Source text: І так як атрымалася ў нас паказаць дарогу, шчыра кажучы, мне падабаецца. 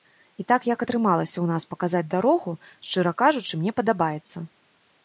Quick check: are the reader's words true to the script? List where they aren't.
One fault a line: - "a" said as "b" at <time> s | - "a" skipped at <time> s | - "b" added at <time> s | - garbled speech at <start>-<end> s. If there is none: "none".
none